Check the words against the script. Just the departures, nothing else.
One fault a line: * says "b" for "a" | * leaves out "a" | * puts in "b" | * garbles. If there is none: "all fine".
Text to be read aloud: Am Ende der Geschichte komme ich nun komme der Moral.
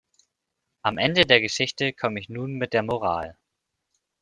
* says "mit" for "komme"